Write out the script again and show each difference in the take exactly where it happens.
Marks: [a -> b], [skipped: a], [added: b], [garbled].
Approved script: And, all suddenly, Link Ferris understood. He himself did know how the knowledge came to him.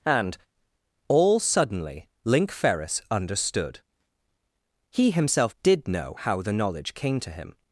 And, all suddenly, Link Ferris understood. He himself did know how the knowledge came to him.